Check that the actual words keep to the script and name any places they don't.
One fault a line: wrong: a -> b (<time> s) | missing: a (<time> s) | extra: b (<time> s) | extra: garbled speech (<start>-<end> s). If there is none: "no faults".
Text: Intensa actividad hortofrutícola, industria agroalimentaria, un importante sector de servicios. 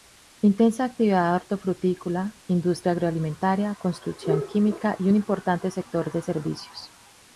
extra: construcción química y (3.8 s)